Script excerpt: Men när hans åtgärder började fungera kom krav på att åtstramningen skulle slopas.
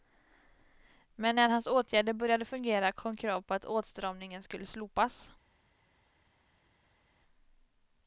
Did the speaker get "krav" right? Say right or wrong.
right